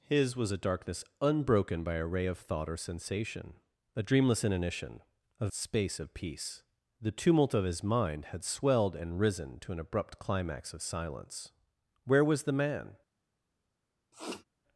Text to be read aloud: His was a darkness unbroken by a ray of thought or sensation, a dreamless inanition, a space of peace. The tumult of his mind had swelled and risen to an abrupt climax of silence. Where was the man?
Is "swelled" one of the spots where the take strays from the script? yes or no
no